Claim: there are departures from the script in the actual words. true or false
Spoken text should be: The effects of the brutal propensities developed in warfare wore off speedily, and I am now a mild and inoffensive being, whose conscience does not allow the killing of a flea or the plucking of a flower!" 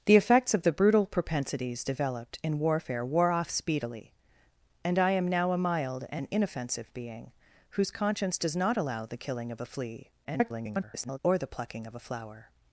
true